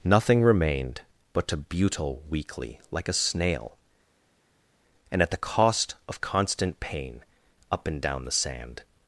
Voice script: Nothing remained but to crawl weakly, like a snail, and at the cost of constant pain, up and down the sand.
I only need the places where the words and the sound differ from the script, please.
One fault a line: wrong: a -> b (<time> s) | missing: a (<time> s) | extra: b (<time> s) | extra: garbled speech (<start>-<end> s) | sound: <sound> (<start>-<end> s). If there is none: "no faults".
wrong: crawl -> butle (1.6 s)